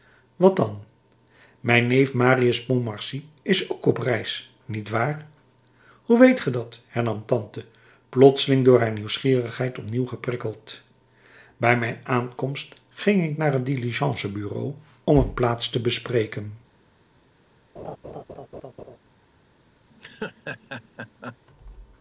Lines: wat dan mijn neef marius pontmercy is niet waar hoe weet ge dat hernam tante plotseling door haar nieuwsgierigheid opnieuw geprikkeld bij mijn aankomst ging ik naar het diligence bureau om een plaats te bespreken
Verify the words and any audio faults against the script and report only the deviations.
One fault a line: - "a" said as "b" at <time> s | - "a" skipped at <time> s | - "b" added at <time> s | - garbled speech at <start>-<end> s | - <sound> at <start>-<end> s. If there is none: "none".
- "ook op reis" added at 3.7 s
- laugh at 17.8-19.0 s
- laugh at 19.9-21.4 s